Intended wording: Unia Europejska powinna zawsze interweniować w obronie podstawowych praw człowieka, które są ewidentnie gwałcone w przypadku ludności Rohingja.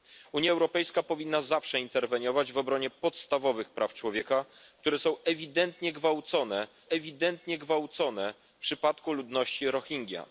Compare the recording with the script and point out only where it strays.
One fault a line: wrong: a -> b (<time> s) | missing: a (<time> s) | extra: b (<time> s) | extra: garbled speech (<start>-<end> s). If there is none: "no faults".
extra: ewidentnie gwałcone (6.9 s)